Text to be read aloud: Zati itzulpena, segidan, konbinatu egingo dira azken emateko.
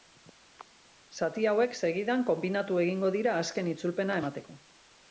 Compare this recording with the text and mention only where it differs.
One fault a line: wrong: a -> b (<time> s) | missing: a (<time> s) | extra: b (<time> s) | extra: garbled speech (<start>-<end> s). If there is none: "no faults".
wrong: itzulpena -> hauek (1.5 s)
extra: itzulpena (3.8 s)